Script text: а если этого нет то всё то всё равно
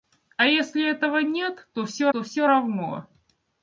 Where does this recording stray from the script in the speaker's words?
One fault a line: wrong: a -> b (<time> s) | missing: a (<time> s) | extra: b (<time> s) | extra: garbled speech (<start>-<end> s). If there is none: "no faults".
no faults